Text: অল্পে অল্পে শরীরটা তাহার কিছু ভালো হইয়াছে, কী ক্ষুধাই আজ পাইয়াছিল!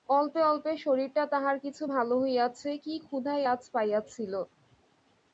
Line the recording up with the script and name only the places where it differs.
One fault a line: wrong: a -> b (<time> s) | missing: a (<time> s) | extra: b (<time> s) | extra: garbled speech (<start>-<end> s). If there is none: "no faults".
no faults